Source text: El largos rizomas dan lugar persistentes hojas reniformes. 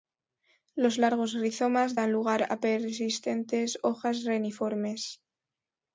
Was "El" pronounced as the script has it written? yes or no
no